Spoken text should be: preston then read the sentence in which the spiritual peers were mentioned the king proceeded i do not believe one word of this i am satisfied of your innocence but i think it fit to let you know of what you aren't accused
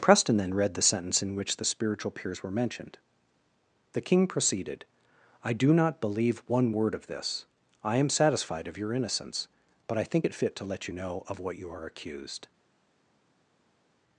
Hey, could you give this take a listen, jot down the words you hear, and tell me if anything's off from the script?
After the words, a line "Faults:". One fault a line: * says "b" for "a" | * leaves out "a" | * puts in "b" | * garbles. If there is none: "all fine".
preston then read the sentence in which the spiritual peers were mentioned the king proceeded i do not believe one word of this i am satisfied of your innocence but i think it fit to let you know of what you are accused
Faults:
* says "are" for "aren't"